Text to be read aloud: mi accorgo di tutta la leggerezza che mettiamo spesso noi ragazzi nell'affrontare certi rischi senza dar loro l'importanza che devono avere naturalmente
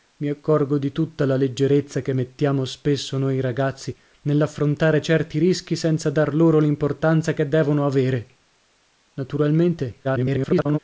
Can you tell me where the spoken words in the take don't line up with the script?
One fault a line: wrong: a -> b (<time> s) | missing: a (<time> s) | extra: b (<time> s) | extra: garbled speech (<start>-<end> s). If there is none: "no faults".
extra: garbled speech (10.0-10.8 s)